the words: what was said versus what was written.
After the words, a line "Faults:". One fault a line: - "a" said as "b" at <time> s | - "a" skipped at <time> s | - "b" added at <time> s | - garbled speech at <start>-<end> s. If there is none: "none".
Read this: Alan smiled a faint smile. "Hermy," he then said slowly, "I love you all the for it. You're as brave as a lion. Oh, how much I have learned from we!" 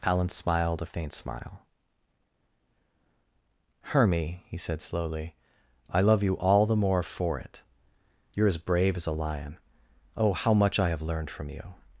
Alan smiled a faint smile. "Hermy," he said slowly, "I love you all the more for it. You're as brave as a lion. Oh, how much I have learned from you!"
Faults:
- "then" skipped at 4.6 s
- "more" added at 6.8 s
- "we" said as "you" at 11.5 s